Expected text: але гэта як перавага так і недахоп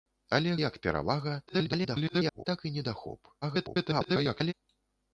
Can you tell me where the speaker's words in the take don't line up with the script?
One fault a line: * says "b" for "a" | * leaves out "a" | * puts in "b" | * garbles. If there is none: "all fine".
* leaves out "гэта"
* garbles
* garbles